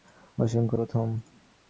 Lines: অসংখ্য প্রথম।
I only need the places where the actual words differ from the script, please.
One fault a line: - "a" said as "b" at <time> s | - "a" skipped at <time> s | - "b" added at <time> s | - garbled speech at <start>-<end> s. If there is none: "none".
none